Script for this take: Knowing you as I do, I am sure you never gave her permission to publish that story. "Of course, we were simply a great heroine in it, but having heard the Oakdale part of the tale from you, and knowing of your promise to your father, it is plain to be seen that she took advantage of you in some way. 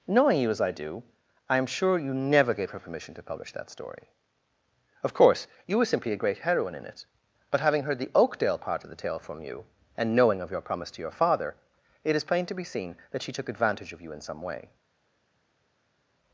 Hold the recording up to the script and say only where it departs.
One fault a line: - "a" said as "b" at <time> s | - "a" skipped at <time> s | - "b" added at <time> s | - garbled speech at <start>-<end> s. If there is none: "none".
- "we" said as "you" at 5.7 s